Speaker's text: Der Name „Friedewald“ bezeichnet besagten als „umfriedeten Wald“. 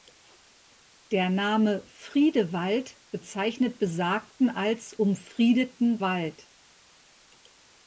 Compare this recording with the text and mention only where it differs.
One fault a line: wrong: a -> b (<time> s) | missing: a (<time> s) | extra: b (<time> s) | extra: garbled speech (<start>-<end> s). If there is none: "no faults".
no faults